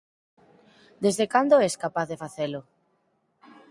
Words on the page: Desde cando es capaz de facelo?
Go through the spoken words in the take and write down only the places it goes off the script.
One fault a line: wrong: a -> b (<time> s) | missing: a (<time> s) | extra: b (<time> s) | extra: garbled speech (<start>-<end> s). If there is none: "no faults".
no faults